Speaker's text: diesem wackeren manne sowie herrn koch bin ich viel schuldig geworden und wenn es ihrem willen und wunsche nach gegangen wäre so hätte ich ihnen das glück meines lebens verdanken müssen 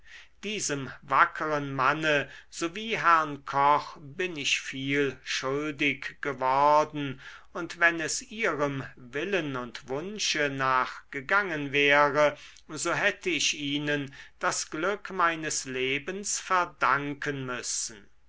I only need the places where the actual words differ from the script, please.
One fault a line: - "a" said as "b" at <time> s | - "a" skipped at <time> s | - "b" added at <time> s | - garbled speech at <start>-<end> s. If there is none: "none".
none